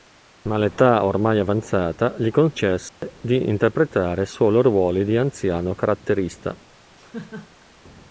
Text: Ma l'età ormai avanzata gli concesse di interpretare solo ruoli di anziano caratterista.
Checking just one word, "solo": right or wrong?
right